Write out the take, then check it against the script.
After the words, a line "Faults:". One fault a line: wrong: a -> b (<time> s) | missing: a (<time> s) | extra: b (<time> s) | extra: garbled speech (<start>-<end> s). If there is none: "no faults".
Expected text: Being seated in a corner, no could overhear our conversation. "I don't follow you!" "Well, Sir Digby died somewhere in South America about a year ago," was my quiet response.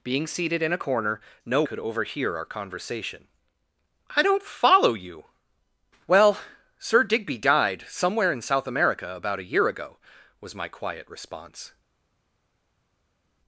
Being seated in a corner, no could overhear our conversation. "I don't follow you!" "Well, Sir Digby died somewhere in South America about a year ago," was my quiet response.
Faults:
no faults